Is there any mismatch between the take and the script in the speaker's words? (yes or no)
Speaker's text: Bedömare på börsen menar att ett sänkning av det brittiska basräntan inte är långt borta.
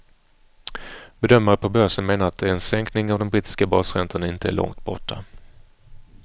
yes